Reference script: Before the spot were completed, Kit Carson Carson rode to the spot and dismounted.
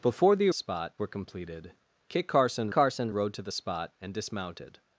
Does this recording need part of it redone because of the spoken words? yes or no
no